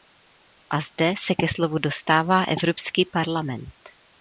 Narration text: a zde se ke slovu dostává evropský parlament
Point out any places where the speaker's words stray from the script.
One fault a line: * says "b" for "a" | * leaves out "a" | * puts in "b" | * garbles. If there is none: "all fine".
all fine